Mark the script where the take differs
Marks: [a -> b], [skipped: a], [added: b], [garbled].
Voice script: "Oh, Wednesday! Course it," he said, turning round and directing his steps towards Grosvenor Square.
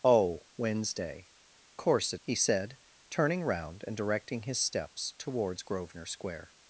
"Oh, Wednesday! Course it," he said, turning round and directing his steps towards Grosvenor Square.